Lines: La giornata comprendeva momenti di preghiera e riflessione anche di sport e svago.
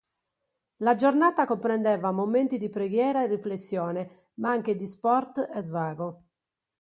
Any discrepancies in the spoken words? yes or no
yes